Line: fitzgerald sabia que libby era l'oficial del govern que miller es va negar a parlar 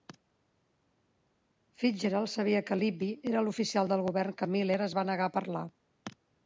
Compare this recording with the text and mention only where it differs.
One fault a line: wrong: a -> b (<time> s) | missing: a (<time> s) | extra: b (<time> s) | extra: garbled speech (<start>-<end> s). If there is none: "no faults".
no faults